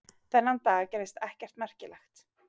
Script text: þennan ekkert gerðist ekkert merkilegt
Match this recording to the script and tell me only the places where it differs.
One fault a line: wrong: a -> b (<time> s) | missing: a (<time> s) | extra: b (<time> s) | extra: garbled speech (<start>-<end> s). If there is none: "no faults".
wrong: ekkert -> dag (0.7 s)